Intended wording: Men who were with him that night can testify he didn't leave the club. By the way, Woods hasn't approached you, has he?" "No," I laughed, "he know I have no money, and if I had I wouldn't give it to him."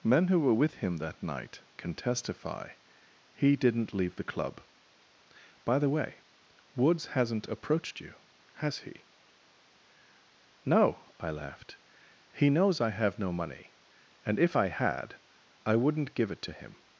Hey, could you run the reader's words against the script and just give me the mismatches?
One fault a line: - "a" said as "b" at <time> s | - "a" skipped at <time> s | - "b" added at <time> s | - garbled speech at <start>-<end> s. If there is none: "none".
- "know" said as "knows" at 12.5 s